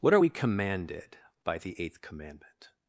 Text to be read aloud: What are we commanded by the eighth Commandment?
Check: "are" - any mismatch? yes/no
no